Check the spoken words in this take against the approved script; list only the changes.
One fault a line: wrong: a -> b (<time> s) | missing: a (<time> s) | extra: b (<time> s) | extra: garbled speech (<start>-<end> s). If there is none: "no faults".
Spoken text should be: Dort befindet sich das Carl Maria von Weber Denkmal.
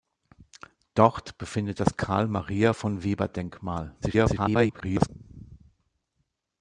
missing: sich (1.8 s)
extra: garbled speech (4.0-5.1 s)